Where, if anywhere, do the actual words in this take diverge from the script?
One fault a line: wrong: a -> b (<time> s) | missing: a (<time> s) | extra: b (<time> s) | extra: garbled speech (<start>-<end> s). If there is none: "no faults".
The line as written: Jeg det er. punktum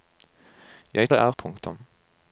no faults